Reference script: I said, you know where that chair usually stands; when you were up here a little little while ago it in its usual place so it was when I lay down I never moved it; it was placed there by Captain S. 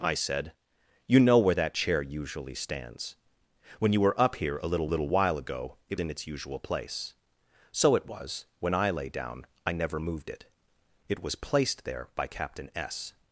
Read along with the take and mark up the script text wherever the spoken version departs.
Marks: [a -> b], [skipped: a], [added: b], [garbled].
I said, you know where that chair usually stands; when you were up here a little little while ago it in its usual place so it was when I lay down I never moved it; it was placed there by Captain S.